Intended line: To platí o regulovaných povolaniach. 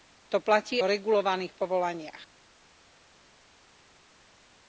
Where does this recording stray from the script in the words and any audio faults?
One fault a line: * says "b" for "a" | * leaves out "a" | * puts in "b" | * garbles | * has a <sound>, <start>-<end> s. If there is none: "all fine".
all fine